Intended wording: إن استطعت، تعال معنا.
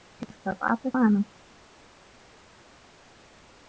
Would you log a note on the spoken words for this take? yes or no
yes